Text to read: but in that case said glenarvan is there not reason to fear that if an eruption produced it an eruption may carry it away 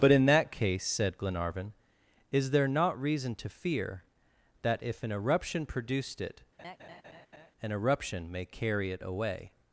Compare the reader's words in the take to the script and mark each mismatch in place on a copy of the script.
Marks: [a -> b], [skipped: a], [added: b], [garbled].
but in that case said glenarvan is there not reason to fear that if an eruption produced it an eruption may carry it away